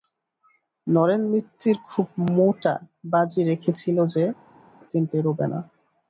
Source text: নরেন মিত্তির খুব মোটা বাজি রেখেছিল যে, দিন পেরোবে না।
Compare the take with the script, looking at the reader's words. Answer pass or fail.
pass